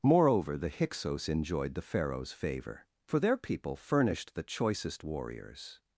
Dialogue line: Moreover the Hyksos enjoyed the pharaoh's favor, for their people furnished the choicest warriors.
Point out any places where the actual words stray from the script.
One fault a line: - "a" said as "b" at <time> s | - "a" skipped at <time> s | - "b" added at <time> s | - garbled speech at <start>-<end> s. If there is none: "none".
none